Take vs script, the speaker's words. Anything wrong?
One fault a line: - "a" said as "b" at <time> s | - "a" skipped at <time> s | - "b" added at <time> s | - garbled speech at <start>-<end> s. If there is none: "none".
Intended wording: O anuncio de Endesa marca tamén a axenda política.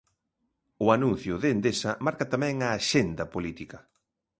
none